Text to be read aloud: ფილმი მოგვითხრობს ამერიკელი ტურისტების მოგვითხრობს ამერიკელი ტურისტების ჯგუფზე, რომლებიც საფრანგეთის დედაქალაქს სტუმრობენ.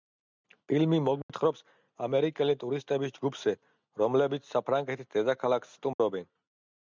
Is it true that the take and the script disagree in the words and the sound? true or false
true